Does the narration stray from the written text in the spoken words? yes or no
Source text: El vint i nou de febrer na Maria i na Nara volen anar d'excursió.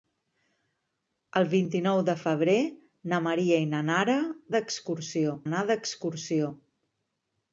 yes